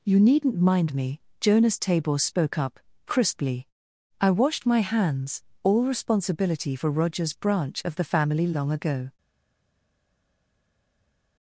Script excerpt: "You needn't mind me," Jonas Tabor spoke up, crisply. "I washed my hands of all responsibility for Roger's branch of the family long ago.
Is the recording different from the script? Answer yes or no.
yes